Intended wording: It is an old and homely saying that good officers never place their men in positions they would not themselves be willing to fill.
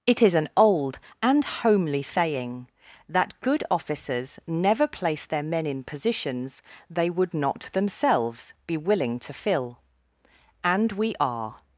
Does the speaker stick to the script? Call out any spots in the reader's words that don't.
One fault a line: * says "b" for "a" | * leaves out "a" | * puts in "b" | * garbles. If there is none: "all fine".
* puts in "And we are"